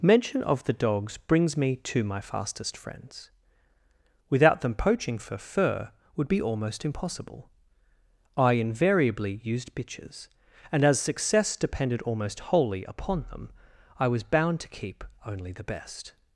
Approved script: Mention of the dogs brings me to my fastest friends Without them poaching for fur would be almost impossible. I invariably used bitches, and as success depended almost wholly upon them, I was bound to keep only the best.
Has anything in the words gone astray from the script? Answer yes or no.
no